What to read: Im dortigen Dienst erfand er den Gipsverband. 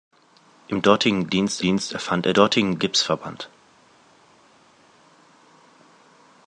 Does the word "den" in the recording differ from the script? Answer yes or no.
yes